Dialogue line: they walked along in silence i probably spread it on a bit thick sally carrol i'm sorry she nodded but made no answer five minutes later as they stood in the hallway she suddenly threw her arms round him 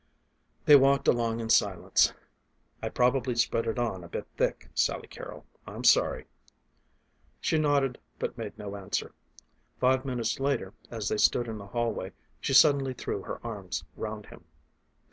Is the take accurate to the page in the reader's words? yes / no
yes